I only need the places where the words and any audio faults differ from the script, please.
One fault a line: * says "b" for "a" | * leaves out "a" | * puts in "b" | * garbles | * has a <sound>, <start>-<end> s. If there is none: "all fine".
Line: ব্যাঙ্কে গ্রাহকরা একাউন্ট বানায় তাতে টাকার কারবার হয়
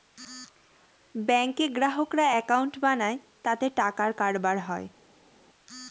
all fine